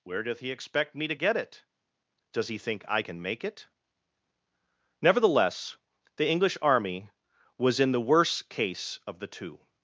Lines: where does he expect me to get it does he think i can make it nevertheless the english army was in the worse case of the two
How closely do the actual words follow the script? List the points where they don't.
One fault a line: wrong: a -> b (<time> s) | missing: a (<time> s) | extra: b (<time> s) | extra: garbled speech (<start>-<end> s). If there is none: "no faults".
wrong: does -> doth (0.2 s)